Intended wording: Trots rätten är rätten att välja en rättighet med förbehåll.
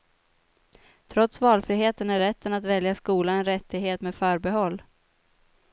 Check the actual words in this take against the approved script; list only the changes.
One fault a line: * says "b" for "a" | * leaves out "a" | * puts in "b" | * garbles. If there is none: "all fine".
* says "valfriheten" for "rätten"
* puts in "skola"